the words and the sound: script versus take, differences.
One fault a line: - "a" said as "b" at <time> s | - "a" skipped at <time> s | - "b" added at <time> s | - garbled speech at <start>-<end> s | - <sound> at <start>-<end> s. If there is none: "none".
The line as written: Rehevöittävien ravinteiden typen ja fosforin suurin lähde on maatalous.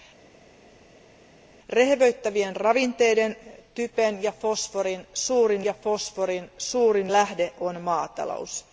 - "ja fosforin suurin" added at 5.6 s